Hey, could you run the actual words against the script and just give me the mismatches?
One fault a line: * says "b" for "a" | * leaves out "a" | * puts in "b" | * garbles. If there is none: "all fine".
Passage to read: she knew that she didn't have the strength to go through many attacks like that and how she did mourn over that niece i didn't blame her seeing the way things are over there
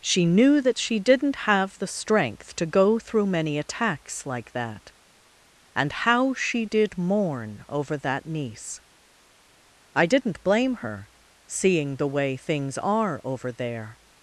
all fine